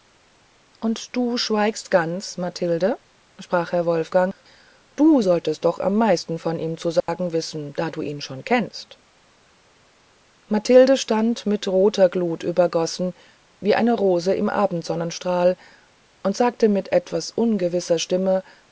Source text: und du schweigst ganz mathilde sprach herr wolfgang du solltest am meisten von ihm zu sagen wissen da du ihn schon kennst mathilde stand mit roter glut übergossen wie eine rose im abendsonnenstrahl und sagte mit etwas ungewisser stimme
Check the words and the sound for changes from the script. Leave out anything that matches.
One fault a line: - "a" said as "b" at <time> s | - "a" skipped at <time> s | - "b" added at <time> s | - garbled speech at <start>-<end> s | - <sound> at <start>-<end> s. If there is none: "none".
- "doch" added at 5.6 s
- dropout at 7.0-7.1 s